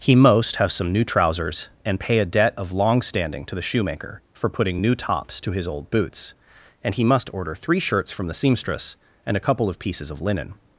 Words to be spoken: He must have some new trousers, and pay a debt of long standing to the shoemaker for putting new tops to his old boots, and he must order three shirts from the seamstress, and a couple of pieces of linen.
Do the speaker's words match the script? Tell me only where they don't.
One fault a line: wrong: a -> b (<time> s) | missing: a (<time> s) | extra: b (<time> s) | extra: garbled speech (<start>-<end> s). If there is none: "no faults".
wrong: must -> most (0.1 s)